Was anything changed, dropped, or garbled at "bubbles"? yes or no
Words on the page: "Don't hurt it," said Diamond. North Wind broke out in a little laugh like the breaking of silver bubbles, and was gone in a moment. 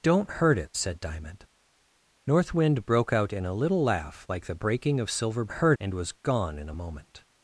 yes